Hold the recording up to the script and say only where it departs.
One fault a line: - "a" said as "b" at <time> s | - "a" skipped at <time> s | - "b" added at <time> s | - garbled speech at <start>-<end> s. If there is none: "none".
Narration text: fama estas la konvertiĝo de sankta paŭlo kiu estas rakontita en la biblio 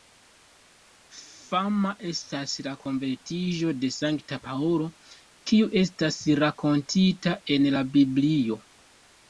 none